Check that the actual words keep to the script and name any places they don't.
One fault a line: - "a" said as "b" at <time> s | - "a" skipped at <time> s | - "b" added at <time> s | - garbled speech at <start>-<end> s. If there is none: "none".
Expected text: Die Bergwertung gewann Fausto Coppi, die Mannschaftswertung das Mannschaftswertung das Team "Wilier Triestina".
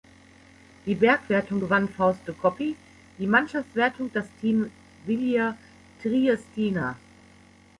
- "Mannschaftswertung das" skipped at 4.3 s